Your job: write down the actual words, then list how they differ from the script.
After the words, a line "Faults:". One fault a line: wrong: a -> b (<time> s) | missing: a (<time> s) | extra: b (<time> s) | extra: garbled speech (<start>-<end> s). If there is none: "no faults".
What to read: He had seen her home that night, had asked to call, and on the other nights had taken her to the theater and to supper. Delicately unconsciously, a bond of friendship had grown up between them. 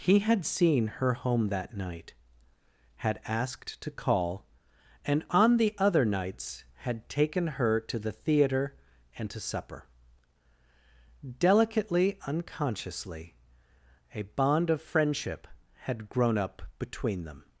He had seen her home that night, had asked to call, and on the other nights had taken her to the theater and to supper. Delicately unconsciously, a bond of friendship had grown up between them.
Faults:
no faults